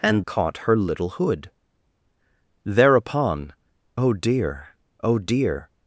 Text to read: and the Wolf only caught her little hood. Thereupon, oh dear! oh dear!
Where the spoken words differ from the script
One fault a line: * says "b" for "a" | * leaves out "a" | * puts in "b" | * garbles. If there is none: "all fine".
* leaves out "the Wolf only"